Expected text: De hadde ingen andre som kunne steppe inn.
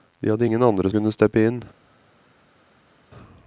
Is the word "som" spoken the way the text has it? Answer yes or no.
no